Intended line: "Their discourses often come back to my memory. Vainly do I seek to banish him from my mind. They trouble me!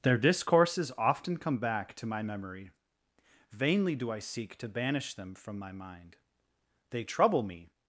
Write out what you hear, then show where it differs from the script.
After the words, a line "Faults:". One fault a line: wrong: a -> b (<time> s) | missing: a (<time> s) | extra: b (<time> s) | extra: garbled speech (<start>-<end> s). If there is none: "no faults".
"Their discourses often come back to my memory. Vainly do I seek to banish them from my mind. They trouble me!
Faults:
wrong: him -> them (5.1 s)